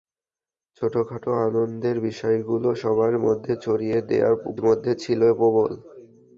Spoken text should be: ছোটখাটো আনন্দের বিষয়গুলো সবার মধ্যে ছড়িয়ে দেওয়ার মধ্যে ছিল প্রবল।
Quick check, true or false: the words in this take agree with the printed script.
true